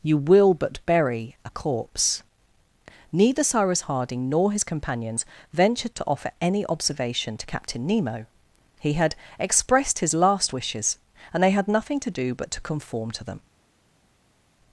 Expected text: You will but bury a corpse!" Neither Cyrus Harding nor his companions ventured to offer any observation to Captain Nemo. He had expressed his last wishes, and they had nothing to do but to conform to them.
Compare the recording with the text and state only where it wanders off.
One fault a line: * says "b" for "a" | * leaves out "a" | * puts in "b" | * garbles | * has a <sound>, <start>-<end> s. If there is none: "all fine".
all fine